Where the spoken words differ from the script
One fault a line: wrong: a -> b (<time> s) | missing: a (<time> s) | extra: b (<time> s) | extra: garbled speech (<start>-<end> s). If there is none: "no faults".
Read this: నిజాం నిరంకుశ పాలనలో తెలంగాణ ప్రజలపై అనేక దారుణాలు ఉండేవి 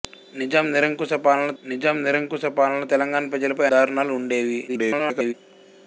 extra: నిజాం నిరంకుశ పాలనలో (1.6 s)
missing: అనేక (3.7 s)
extra: garbled speech (4.7-5.3 s)